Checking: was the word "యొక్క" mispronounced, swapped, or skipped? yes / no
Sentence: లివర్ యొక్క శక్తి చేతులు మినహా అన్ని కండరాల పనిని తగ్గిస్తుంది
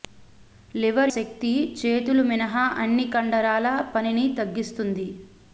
yes